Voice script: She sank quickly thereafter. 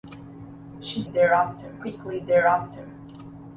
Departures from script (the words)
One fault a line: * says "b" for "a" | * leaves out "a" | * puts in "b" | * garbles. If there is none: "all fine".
* says "thereafter" for "sank"